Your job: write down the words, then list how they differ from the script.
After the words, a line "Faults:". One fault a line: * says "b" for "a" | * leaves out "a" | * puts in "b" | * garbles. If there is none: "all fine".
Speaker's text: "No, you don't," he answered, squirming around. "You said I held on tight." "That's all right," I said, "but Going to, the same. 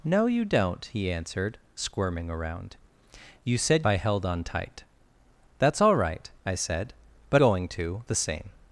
"No, you don't," he answered, squirming around. "You said I held on tight." "That's all right," I said, "but Going to, the same.
Faults:
all fine